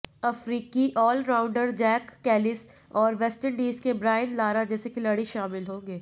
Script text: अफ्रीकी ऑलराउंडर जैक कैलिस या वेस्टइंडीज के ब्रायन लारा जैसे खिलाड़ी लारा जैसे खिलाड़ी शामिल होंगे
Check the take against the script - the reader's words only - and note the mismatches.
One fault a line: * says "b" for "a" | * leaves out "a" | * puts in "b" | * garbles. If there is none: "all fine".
* says "और" for "या"
* leaves out "लारा जैसे खिलाड़ी"